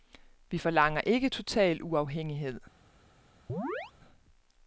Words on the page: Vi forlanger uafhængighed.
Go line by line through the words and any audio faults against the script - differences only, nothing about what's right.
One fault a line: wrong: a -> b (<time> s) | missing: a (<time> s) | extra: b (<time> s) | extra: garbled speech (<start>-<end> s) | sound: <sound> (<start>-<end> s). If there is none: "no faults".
extra: ikke total (1.0 s)
sound: chirp (3.5-3.9 s)